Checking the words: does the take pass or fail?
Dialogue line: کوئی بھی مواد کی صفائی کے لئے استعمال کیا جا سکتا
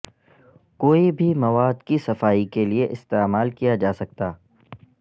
pass